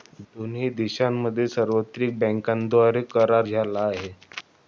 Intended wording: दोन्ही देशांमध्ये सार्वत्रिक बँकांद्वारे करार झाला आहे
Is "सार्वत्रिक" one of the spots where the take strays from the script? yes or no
no